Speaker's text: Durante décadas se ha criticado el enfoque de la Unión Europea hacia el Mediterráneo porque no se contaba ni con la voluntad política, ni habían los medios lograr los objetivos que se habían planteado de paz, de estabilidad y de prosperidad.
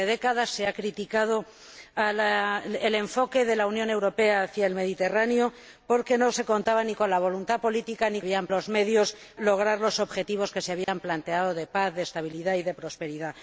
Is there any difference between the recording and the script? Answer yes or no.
no